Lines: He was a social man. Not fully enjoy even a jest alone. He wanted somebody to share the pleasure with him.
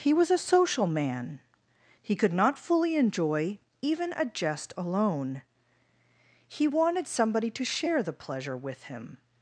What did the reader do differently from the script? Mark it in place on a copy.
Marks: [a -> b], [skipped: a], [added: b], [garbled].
He was a social man. [added: He could] Not fully enjoy even a jest alone. He wanted somebody to share the pleasure with him.